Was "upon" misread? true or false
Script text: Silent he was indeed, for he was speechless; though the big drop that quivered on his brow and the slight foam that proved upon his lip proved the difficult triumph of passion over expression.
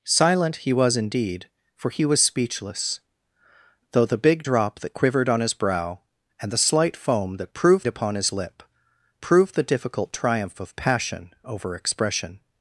false